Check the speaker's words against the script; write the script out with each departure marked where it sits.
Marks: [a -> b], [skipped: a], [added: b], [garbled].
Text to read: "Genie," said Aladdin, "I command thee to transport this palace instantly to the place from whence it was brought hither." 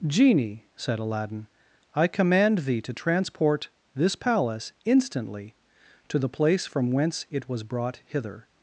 "Genie," said Aladdin, "I command thee to transport this palace instantly to the place from whence it was brought hither."